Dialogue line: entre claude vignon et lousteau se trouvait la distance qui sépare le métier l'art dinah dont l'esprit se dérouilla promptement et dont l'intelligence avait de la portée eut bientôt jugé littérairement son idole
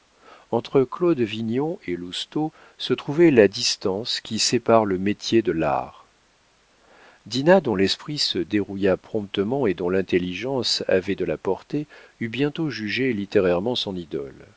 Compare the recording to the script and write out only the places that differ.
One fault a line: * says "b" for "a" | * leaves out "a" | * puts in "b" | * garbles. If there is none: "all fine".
* puts in "de"